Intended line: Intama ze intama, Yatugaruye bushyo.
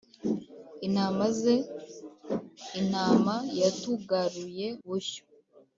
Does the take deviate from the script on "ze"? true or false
false